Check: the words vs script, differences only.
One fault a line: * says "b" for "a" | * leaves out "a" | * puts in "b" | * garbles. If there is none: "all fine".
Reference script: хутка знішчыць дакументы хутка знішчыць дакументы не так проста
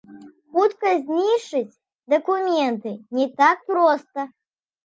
* leaves out "хутка знішчыць дакументы"